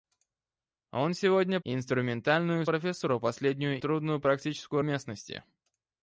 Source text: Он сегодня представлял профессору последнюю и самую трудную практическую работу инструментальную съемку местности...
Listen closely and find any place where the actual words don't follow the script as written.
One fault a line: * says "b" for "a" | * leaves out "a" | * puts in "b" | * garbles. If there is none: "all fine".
* says "инструментальную" for "представлял"
* leaves out "и самую"
* leaves out "работу инструментальную съемку"